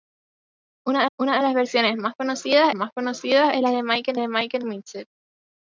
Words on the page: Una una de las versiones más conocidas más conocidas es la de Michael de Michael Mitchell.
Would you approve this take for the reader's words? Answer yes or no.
yes